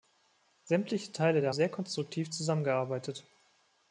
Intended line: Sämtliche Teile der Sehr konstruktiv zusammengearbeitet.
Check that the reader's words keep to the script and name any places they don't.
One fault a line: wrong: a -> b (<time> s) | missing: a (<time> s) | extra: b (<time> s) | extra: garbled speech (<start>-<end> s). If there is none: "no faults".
no faults